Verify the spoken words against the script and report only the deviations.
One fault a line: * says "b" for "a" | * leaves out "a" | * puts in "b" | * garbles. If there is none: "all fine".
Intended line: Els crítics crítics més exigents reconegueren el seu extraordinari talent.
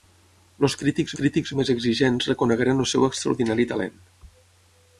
all fine